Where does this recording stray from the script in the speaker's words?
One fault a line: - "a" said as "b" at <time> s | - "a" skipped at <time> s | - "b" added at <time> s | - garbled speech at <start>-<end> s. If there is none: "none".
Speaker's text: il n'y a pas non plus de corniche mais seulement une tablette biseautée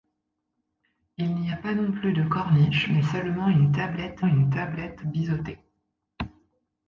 - "une tablette" added at 4.2 s